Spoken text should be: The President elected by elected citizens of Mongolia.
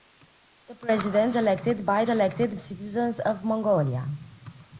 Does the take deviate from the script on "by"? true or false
false